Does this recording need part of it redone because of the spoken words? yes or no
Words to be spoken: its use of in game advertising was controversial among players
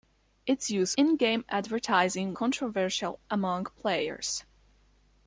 yes